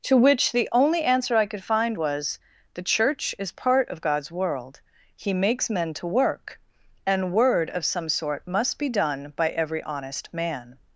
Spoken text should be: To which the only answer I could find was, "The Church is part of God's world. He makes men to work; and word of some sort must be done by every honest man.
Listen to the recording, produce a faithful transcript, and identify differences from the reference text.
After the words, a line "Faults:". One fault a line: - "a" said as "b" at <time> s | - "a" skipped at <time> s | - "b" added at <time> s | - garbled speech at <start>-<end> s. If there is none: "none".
To which the only answer I could find was, "The Church is part of God's world. He makes men to work; and word of some sort must be done by every honest man.
Faults:
none